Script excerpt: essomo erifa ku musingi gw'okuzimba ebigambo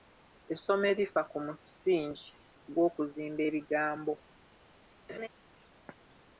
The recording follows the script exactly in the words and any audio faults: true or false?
false